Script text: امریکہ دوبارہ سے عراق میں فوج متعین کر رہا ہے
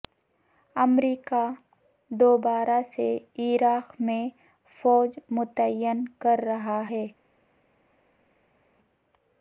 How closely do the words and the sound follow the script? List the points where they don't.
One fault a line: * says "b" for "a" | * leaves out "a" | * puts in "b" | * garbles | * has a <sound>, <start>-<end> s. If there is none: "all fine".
all fine